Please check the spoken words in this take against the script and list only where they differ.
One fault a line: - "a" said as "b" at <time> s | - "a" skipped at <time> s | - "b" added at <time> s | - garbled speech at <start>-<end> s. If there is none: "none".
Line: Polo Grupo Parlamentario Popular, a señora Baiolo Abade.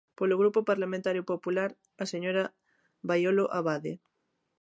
none